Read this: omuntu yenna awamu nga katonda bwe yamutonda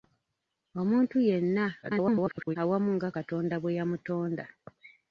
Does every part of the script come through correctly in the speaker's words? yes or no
no